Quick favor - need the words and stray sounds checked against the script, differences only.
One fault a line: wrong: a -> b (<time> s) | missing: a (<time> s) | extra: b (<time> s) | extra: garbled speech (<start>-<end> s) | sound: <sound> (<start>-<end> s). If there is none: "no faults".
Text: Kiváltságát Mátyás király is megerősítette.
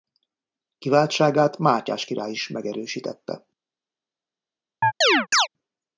sound: chirp (4.8-5.5 s)